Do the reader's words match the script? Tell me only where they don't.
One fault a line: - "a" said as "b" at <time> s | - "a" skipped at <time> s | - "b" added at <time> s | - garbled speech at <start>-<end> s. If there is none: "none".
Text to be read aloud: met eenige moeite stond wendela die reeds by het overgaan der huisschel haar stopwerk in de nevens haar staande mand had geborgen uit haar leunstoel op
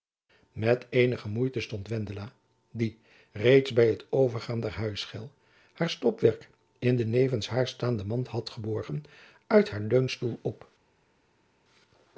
none